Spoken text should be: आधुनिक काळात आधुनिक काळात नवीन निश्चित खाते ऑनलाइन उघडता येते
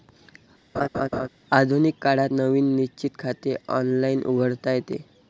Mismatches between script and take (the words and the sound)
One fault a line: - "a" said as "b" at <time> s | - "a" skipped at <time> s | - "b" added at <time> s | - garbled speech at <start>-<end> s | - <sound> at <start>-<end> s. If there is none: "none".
- laugh at 0.7-1.3 s
- "आधुनिक काळात" skipped at 2.3 s